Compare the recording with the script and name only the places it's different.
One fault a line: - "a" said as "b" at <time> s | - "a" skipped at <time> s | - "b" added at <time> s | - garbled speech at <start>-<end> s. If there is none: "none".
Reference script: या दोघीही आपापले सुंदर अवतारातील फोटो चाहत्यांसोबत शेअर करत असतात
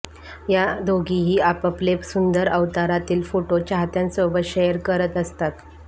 none